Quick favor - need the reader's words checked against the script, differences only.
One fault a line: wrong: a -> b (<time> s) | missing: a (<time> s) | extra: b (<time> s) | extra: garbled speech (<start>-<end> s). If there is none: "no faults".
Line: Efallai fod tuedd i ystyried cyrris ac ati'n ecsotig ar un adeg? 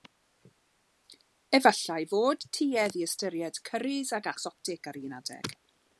missing: ati'n (4.3 s)